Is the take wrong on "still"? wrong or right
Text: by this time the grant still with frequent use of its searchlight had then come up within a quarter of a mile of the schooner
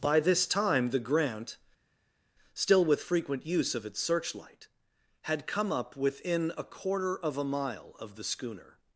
right